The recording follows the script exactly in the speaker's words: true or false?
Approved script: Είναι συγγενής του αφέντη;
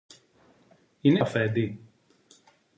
false